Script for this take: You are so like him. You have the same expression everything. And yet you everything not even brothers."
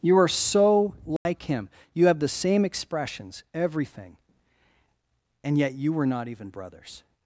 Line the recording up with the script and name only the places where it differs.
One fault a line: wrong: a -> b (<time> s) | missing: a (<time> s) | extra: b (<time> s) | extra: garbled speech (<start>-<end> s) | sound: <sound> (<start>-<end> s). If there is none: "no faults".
sound: dropout (1.2-1.3 s)
wrong: expression -> expressions (2.6 s)
wrong: everything -> were (5.9 s)